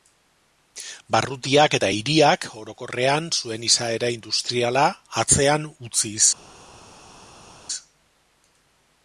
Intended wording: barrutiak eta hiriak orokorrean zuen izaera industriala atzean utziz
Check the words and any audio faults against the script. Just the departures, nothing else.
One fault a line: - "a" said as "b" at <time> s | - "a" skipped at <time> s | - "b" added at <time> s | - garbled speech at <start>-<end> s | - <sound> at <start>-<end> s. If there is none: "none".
none